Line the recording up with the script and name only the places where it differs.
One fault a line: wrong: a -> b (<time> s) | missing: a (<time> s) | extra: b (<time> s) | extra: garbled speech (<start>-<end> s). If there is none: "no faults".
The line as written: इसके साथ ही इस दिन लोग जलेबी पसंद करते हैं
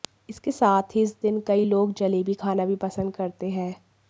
extra: कई (1.5 s)
extra: खाना भी (2.3 s)